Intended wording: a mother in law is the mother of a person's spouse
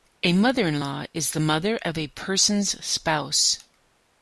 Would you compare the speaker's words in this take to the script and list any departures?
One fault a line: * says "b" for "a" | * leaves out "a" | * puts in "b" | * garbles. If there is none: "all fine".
all fine